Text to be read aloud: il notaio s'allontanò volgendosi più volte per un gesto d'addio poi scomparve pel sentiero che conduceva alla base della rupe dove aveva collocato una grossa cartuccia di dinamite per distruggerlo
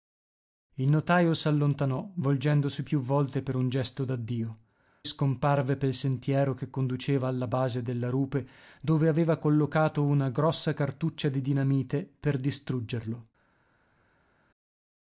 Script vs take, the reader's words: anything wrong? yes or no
yes